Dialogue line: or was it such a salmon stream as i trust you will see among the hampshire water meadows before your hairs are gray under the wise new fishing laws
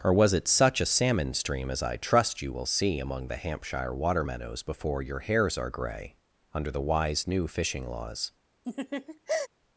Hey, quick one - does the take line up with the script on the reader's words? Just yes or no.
yes